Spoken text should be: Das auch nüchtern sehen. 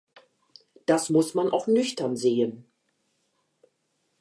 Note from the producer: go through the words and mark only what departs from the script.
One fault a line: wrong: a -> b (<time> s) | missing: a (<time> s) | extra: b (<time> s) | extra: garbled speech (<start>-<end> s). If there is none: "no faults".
extra: muss man (1.1 s)